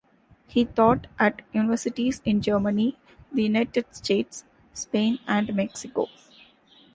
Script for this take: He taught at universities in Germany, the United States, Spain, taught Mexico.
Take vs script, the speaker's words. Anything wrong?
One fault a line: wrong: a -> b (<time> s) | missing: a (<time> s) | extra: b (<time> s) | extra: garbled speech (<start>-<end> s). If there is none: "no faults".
wrong: taught -> and (5.3 s)